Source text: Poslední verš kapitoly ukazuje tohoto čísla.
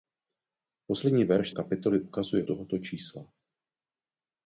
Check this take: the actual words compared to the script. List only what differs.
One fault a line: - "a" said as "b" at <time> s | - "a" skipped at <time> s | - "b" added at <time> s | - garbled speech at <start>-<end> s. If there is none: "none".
none